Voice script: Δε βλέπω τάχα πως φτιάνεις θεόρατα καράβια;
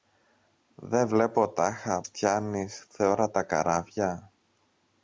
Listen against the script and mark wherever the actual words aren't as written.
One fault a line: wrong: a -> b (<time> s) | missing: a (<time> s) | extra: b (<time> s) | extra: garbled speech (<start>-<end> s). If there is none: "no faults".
missing: πως (2.0 s)